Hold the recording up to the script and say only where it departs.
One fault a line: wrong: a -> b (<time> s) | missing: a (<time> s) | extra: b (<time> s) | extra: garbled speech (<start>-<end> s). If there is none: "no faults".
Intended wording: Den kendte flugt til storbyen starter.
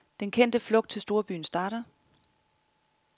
no faults